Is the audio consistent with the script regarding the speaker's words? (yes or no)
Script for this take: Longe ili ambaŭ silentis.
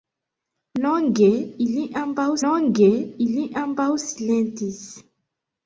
no